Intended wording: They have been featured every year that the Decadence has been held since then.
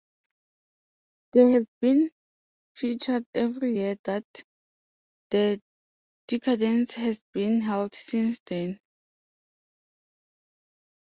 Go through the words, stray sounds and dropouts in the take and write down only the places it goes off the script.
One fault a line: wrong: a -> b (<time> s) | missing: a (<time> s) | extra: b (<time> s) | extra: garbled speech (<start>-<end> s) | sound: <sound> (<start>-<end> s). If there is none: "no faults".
no faults